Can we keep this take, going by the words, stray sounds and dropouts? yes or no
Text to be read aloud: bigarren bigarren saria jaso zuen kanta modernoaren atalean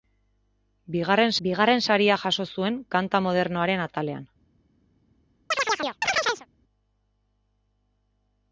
no